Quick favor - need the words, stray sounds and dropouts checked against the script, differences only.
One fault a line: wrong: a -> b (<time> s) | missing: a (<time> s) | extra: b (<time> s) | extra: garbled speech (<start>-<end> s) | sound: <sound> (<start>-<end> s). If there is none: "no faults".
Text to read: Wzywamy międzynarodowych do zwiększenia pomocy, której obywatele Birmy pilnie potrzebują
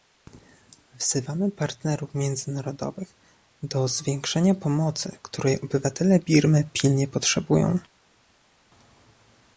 extra: partnerów (1.5 s)